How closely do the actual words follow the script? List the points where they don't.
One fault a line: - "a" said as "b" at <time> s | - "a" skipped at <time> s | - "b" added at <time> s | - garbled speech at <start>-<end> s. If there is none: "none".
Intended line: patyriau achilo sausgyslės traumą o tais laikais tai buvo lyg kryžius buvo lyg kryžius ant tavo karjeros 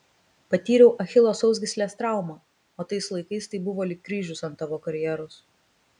- "buvo lyg kryžius" skipped at 4.4 s